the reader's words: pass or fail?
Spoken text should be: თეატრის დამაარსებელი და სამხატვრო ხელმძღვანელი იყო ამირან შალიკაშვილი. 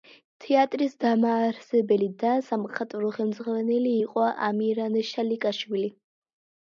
pass